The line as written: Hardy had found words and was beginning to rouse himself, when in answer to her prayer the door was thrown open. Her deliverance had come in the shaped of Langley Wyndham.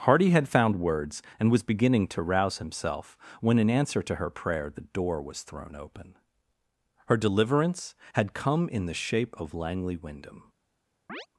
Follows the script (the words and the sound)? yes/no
no